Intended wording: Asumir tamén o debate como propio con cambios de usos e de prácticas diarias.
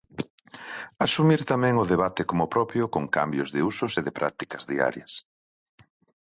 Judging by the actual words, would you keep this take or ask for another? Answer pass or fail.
pass